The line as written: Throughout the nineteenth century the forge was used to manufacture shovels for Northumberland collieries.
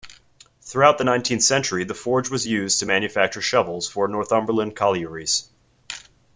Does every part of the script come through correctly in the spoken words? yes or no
yes